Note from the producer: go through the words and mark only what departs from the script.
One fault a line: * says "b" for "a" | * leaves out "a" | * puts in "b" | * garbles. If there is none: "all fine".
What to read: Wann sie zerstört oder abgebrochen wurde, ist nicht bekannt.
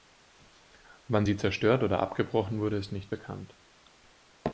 all fine